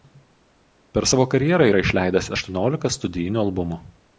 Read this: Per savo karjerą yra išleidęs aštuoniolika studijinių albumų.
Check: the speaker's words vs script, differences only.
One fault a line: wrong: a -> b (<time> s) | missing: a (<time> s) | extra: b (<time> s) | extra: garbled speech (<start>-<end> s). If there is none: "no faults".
no faults